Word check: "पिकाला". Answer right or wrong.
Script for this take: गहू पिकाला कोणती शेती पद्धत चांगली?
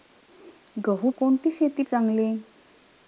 wrong